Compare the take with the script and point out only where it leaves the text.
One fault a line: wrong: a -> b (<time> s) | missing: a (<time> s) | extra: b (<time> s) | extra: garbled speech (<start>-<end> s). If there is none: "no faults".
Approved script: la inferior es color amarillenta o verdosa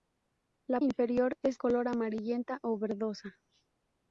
no faults